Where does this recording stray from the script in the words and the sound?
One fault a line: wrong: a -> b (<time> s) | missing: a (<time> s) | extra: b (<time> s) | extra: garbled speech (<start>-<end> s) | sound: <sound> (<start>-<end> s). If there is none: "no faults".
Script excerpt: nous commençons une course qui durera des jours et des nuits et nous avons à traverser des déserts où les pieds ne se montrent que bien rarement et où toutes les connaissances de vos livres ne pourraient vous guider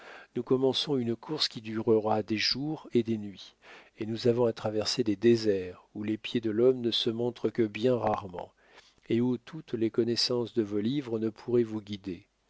extra: de l'homme (6.4 s)